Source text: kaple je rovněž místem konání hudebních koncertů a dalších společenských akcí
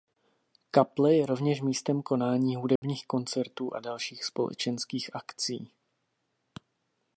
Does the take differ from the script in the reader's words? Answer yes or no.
no